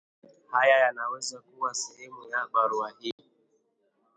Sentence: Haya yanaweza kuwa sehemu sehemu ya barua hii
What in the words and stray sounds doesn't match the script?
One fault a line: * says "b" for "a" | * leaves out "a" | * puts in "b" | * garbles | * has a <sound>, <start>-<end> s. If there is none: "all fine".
* leaves out "sehemu"
* has a dropout, 3.1-3.2 s